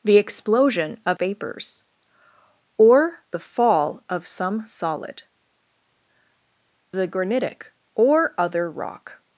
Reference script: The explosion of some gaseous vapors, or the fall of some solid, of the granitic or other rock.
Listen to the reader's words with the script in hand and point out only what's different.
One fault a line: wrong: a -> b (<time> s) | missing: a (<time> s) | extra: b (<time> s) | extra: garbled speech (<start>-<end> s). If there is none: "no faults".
missing: some gaseous (1.2 s)
missing: of (5.2 s)